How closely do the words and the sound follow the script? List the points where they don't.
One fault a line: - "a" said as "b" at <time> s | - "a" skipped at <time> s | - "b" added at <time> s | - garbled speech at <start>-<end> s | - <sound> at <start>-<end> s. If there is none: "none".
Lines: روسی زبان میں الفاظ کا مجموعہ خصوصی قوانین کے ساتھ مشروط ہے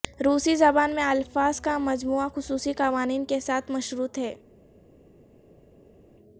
none